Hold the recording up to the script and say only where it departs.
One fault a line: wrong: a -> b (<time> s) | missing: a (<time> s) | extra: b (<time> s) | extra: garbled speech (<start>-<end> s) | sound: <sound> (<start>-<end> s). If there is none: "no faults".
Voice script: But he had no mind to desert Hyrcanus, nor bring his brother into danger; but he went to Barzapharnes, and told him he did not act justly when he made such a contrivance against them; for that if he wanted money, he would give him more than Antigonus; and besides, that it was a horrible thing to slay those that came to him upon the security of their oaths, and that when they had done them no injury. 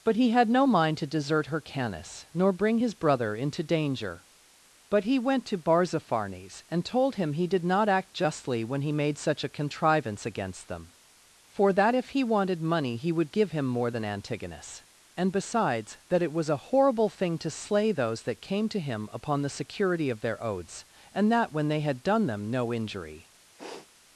sound: sniff (23.6-23.9 s)